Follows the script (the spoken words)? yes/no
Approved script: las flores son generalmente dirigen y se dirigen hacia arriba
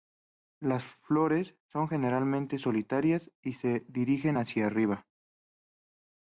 no